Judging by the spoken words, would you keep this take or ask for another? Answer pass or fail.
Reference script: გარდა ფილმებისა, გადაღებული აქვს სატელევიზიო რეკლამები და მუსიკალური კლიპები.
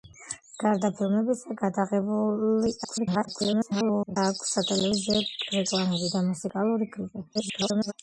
fail